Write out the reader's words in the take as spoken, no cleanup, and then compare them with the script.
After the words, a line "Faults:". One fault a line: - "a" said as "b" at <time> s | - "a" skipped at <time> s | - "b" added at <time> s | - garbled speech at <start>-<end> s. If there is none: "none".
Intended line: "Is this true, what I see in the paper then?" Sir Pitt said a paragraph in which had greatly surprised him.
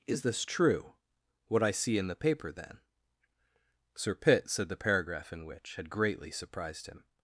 "Is this true, what I see in the paper then?" Sir Pitt said the paragraph in which had greatly surprised him.
Faults:
- "a" said as "the" at 4.7 s